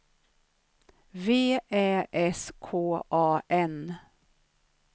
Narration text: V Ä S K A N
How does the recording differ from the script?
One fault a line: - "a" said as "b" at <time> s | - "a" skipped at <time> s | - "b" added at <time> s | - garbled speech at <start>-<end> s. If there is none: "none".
none